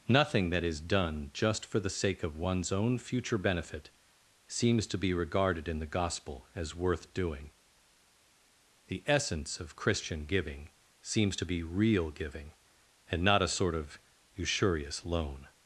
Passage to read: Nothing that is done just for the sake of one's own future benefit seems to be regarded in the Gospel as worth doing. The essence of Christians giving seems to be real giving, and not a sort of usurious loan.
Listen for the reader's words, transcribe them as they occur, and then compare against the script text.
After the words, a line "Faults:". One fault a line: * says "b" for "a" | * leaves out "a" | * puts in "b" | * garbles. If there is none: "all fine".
Nothing that is done just for the sake of one's own future benefit seems to be regarded in the Gospel as worth doing. The essence of Christian giving seems to be real giving, and not a sort of usurious loan.
Faults:
* says "Christian" for "Christians"